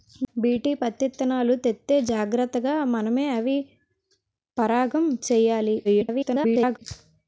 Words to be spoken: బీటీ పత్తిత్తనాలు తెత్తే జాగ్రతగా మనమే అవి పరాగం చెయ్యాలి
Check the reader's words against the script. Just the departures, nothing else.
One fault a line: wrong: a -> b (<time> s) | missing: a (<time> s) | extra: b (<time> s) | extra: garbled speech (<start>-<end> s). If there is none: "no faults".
extra: garbled speech (5.8-6.8 s)